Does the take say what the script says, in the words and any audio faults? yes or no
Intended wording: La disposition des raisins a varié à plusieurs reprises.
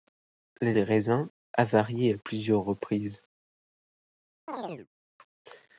no